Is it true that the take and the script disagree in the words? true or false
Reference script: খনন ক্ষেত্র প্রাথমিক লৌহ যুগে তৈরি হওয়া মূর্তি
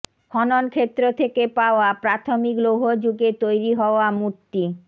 true